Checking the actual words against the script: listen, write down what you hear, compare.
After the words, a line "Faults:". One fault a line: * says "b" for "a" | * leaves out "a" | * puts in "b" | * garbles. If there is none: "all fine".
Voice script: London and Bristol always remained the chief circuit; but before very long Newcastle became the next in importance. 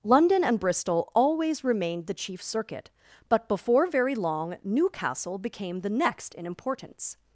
London and Bristol always remained the chief circuit; but before very long Newcastle became the next in importance.
Faults:
all fine